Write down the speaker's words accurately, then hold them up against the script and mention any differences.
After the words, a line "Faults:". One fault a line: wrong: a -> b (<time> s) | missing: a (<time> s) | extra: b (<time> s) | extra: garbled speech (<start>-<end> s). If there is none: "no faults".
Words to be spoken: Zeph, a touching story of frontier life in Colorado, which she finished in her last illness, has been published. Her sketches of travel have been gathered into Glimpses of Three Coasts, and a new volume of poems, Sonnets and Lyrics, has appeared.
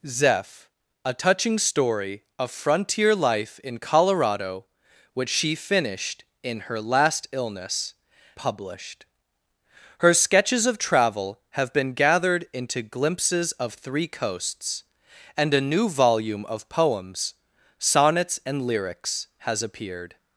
Zeph, a touching story of frontier life in Colorado, which she finished in her last illness, published. Her sketches of travel have been gathered into Glimpses of Three Coasts, and a new volume of poems, Sonnets and Lyrics, has appeared.
Faults:
missing: has been (7.9 s)